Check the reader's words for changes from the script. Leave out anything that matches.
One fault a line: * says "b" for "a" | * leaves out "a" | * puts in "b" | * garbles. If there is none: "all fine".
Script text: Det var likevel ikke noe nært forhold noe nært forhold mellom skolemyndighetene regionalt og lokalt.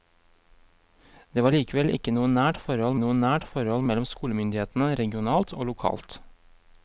all fine